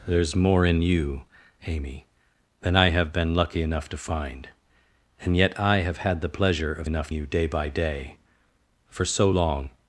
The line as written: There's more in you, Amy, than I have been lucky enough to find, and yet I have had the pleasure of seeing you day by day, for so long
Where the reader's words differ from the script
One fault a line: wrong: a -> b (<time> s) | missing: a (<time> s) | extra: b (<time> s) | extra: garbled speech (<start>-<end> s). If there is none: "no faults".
wrong: seeing -> enough (6.8 s)